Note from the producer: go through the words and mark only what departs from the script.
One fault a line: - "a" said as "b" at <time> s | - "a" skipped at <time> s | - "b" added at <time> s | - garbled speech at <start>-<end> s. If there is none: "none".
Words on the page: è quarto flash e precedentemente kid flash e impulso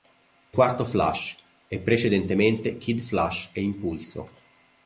none